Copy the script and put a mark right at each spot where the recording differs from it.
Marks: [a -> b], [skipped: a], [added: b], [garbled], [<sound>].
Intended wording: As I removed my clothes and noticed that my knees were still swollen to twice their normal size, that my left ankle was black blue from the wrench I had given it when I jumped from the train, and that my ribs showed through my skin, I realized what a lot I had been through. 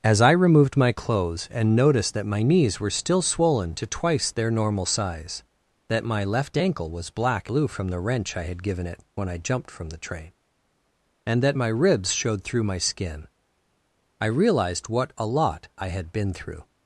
As I removed my clothes and noticed that my knees were still swollen to twice their normal size, that my left ankle was black blue from the wrench I had given it when I jumped from the train, and that my ribs showed through my skin, I realized what a lot I had been through.